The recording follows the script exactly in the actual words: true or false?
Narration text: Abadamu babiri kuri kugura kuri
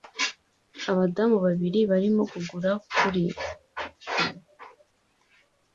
false